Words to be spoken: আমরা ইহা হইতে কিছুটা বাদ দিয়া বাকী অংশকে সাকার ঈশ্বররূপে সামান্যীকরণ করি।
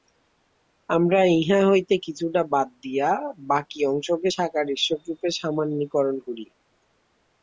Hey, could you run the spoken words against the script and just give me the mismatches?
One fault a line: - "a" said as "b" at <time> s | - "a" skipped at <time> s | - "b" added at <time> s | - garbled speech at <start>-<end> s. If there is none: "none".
none